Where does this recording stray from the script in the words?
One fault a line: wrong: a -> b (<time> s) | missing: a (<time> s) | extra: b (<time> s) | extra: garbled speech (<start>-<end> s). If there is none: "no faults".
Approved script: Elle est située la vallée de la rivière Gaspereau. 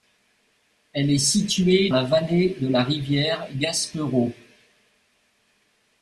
no faults